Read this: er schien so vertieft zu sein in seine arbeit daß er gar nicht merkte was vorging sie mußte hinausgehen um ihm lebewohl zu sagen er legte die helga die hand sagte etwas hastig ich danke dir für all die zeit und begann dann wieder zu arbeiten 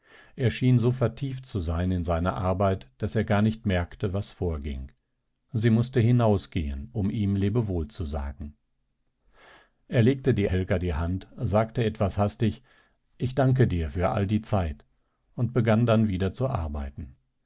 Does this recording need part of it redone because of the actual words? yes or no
no